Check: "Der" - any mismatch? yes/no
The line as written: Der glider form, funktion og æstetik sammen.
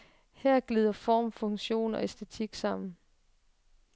yes